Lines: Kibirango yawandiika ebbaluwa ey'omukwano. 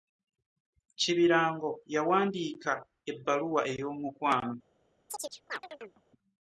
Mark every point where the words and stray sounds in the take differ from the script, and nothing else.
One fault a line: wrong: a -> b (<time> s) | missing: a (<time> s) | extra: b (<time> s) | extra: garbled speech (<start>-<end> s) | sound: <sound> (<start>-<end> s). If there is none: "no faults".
sound: chirp (5.1-6.0 s)